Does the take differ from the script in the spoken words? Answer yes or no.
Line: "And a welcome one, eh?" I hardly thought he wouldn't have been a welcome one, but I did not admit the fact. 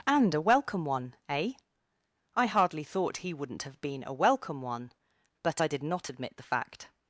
no